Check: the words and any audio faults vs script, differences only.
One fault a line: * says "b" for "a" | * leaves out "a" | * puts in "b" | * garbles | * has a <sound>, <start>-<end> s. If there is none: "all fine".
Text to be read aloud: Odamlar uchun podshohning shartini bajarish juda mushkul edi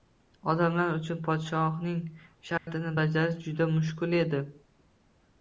* has a dropout, 2.6-2.7 s